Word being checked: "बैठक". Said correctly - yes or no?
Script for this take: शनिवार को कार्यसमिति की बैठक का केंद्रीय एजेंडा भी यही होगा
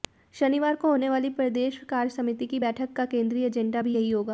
yes